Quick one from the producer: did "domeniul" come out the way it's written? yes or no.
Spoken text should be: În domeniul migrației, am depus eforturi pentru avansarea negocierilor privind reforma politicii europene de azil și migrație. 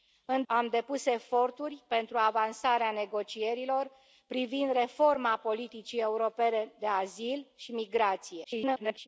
no